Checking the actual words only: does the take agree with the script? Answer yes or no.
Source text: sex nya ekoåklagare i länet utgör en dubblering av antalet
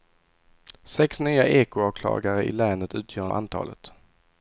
no